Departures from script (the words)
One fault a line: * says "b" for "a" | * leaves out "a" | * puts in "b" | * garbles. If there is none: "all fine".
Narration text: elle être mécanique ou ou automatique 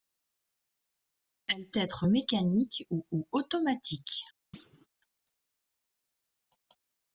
all fine